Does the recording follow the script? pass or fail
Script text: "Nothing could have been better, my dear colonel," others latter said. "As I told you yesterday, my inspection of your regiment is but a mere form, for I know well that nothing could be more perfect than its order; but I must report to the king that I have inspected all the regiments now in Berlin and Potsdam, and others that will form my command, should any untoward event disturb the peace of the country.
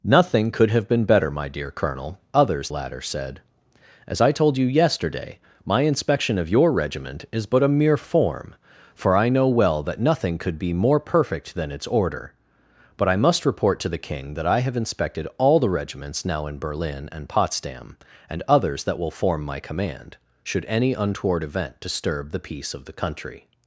pass